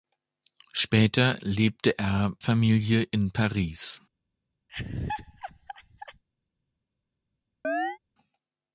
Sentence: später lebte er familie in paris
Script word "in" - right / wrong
right